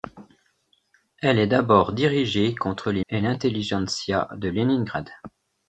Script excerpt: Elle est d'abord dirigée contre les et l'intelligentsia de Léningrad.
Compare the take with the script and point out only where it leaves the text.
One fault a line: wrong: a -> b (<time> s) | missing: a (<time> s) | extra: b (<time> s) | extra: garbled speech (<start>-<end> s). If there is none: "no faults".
no faults